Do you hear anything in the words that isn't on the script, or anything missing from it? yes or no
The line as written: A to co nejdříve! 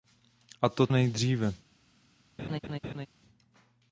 yes